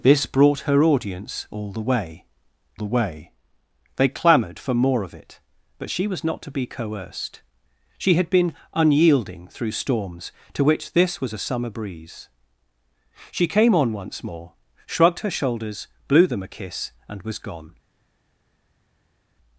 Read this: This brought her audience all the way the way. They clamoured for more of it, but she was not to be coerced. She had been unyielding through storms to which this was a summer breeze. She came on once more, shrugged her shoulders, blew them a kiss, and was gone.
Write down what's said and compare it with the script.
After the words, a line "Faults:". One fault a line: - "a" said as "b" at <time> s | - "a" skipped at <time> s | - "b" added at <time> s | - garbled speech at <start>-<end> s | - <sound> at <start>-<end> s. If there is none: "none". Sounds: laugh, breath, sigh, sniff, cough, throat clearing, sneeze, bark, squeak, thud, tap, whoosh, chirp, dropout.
This brought her audience all the way the way. They clamoured for more of it, but she was not to be coerced. She had been unyielding through storms to which this was a summer breeze. She came on once more, shrugged her shoulders, blew them a kiss, and was gone.
Faults:
none